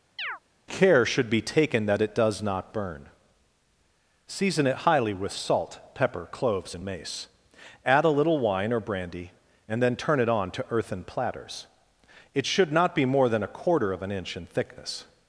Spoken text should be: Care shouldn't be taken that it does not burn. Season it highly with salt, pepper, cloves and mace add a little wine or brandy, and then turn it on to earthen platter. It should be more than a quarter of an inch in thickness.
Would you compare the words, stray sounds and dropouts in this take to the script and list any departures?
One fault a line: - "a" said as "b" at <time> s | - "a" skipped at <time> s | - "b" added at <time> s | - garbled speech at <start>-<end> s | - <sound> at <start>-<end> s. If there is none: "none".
- chirp at 0.2-0.4 s
- "shouldn't" said as "should" at 1.0 s
- "platter" said as "platters" at 11.0 s
- "not" added at 12.7 s